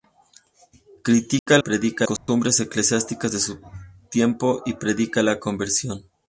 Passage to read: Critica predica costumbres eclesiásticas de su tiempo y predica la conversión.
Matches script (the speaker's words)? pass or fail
pass